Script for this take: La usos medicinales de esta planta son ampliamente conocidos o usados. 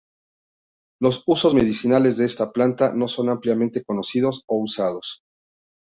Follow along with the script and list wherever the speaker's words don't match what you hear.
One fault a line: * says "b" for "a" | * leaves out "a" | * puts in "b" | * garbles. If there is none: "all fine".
* says "Los" for "La"
* puts in "no"